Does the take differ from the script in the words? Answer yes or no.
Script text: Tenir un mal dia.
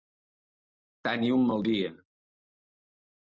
no